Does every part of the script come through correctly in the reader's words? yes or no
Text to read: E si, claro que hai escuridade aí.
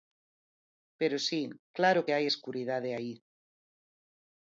no